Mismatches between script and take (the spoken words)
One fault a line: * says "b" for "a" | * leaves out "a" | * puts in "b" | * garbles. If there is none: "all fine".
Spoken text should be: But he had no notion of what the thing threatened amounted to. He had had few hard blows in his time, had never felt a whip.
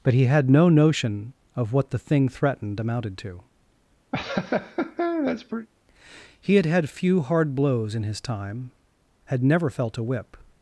all fine